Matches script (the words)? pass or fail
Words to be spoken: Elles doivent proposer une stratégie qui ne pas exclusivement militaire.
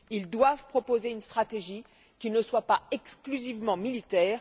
fail